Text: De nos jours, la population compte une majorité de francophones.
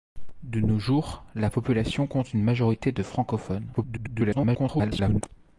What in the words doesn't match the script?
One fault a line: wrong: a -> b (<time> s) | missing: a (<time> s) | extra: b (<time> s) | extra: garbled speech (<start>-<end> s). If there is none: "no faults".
extra: garbled speech (3.7-5.2 s)